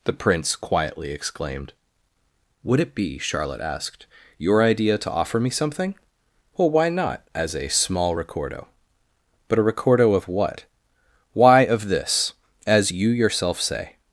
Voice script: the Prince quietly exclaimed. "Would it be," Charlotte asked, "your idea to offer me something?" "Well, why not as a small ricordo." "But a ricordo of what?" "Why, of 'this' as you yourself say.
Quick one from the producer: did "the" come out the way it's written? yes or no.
yes